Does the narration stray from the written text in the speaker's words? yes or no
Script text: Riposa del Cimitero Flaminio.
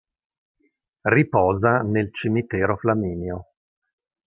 yes